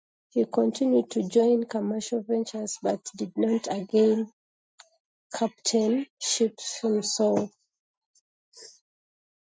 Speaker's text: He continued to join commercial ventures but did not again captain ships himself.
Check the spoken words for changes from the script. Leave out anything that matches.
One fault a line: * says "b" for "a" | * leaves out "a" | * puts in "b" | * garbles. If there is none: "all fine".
all fine